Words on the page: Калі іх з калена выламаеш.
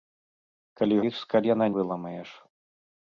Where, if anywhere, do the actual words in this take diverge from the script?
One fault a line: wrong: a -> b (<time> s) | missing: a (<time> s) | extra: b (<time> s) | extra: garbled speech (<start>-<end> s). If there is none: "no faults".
no faults